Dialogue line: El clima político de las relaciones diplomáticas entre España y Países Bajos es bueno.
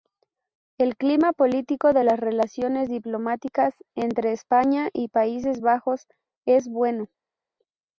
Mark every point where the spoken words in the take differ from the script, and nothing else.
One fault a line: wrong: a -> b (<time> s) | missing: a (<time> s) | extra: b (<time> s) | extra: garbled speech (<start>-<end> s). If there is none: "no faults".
no faults